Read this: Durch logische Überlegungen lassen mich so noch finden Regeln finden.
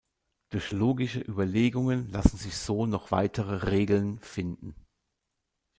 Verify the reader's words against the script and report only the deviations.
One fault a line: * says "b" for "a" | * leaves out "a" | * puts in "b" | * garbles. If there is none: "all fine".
* says "sich" for "mich"
* says "weitere" for "finden"